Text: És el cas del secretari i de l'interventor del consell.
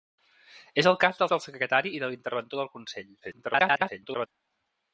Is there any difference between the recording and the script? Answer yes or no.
yes